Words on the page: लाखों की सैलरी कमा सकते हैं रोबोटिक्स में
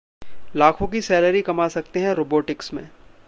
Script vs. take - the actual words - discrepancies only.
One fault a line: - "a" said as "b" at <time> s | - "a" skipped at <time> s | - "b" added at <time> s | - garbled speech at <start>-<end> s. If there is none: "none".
none